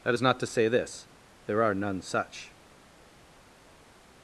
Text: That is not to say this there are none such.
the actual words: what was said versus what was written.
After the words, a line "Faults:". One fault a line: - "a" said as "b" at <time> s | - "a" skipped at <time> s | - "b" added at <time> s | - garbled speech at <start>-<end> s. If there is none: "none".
That is not to say this there are none such.
Faults:
none